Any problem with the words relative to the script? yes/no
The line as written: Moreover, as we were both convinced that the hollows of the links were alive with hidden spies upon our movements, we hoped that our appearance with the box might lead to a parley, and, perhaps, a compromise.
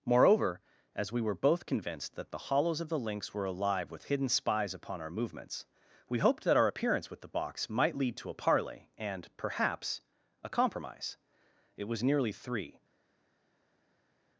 yes